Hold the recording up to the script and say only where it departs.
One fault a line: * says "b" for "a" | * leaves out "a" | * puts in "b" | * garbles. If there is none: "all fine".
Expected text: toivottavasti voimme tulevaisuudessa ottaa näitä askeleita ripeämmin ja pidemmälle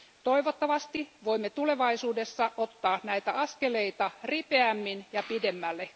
all fine